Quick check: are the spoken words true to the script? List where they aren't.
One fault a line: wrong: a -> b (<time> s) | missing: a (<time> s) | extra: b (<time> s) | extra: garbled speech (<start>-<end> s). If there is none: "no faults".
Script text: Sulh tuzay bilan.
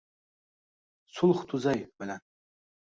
no faults